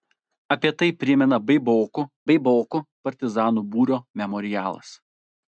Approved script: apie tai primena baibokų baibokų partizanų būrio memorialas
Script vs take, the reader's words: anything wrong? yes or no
no